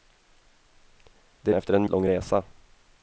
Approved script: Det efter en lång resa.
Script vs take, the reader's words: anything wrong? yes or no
no